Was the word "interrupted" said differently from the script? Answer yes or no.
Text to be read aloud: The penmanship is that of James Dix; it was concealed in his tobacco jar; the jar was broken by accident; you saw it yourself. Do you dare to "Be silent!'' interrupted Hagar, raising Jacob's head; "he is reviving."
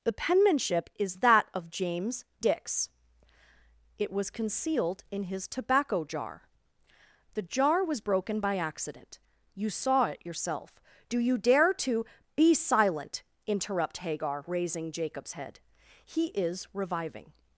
yes